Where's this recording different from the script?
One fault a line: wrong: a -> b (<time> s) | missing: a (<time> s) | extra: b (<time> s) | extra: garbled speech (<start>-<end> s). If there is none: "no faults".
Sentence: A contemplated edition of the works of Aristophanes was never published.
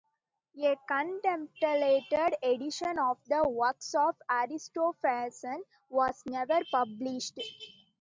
no faults